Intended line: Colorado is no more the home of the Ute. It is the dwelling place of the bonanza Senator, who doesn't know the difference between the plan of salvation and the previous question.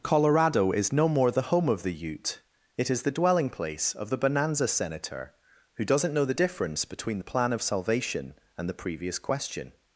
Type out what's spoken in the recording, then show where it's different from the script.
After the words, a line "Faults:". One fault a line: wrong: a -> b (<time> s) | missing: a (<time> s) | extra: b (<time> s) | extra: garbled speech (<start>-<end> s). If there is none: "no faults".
Colorado is no more the home of the Ute. It is the dwelling place of the bonanza Senator, who doesn't know the difference between the plan of salvation and the previous question.
Faults:
no faults